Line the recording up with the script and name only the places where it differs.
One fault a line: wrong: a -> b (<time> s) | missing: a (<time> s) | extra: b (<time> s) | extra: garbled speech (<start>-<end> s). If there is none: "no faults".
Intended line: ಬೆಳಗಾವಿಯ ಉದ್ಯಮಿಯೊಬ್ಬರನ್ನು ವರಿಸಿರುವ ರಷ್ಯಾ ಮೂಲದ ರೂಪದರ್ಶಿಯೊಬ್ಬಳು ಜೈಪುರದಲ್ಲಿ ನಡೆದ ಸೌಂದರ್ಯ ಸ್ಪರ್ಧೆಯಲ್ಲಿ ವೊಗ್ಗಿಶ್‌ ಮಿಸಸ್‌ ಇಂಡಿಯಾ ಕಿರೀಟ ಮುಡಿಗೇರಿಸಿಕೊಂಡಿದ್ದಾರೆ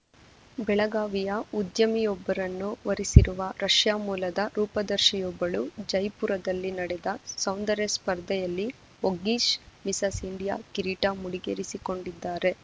no faults